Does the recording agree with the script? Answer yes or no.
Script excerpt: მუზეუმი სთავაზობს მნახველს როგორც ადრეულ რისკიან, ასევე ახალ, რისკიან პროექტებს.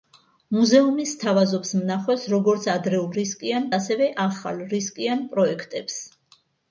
yes